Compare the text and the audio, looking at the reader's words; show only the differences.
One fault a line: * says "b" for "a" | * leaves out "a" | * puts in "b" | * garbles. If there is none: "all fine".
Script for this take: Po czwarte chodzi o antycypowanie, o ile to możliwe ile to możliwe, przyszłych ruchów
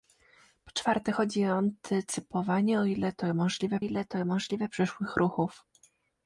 all fine